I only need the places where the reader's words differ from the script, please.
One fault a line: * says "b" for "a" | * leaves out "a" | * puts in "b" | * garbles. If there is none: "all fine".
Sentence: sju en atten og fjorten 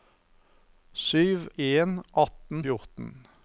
all fine